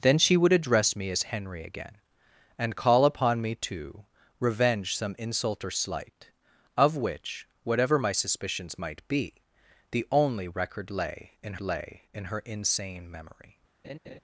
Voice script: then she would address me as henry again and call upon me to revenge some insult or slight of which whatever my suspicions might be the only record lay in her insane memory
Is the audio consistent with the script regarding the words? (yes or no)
no